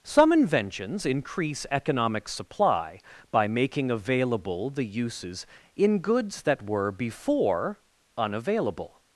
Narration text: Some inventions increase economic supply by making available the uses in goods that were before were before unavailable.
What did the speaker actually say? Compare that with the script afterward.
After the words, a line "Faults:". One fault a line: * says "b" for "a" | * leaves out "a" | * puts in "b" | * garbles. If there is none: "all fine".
Some inventions increase economic supply by making available the uses in goods that were before unavailable.
Faults:
* leaves out "were before"